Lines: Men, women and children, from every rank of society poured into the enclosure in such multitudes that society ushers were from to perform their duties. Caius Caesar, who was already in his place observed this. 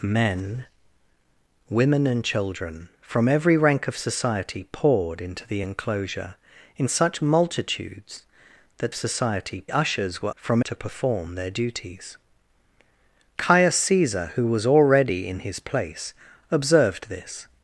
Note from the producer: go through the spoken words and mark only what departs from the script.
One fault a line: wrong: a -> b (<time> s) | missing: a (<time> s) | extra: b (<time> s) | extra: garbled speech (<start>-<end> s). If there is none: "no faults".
no faults